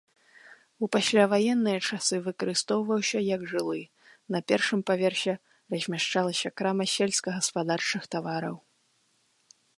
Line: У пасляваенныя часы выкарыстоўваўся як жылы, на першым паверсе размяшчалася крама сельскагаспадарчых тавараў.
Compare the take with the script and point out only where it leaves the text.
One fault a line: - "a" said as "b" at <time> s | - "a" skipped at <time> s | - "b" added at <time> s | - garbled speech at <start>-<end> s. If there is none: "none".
none